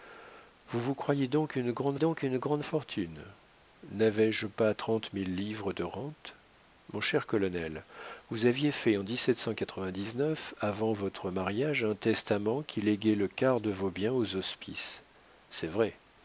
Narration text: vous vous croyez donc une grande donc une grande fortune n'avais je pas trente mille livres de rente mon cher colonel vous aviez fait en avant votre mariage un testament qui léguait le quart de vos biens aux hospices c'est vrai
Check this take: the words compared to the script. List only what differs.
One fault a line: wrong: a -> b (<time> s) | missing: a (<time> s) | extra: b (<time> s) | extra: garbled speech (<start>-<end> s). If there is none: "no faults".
no faults